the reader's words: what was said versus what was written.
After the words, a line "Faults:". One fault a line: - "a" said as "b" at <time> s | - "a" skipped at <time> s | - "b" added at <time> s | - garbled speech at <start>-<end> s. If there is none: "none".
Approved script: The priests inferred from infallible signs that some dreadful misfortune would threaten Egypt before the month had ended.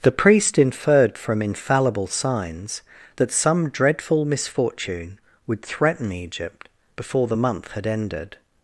The priest inferred from infallible signs that some dreadful misfortune would threaten Egypt before the month had ended.
Faults:
- "priests" said as "priest" at 0.1 s